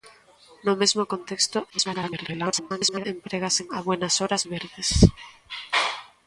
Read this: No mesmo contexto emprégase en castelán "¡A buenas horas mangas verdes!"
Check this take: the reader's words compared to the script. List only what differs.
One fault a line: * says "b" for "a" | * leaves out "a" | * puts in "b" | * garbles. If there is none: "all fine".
* garbles
* leaves out "castelán"
* leaves out "mangas"